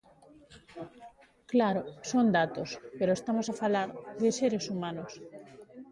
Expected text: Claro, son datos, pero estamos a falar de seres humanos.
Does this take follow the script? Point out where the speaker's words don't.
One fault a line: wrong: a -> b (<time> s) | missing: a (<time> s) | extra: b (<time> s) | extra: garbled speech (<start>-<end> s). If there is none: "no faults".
no faults